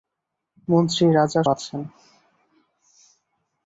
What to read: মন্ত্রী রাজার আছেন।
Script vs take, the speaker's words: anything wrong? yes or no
no